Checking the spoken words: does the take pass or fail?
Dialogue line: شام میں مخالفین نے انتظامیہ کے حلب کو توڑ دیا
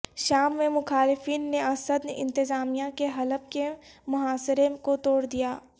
fail